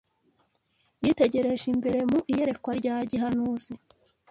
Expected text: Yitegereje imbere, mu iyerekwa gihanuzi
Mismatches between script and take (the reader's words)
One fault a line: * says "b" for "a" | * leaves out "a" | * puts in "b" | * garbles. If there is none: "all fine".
* puts in "rya"